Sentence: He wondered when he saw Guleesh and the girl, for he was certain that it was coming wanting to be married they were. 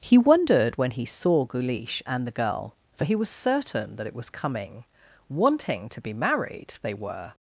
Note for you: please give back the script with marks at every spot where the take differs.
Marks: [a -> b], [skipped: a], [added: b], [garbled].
He wondered when he saw Guleesh and the girl, for he was certain that it was coming wanting to be married they were.